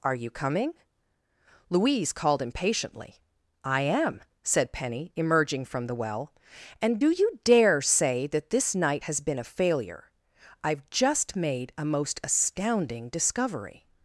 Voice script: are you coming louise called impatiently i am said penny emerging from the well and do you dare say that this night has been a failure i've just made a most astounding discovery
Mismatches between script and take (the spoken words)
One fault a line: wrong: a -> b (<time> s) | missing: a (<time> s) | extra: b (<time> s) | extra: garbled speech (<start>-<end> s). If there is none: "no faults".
no faults